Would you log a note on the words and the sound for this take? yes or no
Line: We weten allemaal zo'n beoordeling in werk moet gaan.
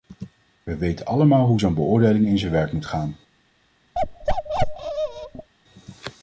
yes